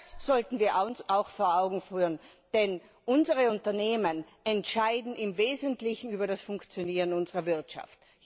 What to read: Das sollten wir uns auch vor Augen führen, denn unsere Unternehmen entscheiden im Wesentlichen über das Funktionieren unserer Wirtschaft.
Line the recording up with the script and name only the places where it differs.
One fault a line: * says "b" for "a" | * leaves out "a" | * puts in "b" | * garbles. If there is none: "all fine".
all fine